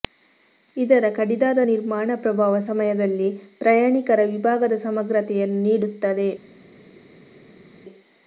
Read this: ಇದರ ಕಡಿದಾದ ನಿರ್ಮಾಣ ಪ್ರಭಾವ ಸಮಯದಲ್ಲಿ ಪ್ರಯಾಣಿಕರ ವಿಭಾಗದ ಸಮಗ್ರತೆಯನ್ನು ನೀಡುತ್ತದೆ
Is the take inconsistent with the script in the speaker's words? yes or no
no